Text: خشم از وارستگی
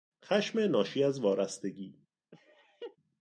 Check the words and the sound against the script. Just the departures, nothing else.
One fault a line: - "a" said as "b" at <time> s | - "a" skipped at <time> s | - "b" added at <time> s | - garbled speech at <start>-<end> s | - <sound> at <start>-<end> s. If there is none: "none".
- "ناشی" added at 0.6 s
- laugh at 2.3-3.0 s